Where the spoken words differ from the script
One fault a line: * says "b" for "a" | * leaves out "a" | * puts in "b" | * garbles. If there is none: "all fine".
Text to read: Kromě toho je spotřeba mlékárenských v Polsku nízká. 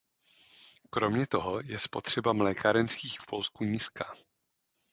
all fine